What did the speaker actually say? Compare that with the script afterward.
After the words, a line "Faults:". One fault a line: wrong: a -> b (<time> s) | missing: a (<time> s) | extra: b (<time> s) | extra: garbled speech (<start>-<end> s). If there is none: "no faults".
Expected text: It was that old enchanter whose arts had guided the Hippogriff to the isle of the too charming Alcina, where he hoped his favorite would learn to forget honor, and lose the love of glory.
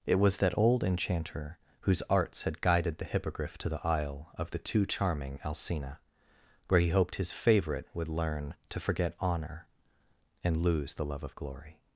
It was that old enchanter whose arts had guided the Hippogriff to the isle of the too charming Alcina, where he hoped his favorite would learn to forget honor, and lose the love of glory.
Faults:
no faults